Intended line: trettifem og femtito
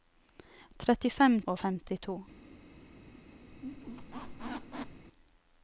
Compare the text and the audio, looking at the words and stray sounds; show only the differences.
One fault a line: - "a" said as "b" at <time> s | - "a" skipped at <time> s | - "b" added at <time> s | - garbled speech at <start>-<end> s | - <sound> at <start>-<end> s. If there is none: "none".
- squeak at 3.5-5.1 s